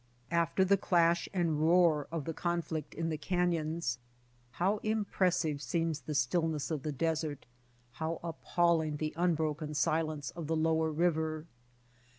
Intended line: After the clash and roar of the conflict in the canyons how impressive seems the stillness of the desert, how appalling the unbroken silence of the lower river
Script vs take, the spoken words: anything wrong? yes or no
no